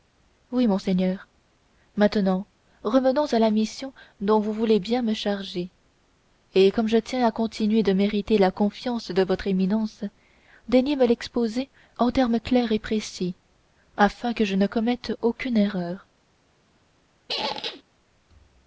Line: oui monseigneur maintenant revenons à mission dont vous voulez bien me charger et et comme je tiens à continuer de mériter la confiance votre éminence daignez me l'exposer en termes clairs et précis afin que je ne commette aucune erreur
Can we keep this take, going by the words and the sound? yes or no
no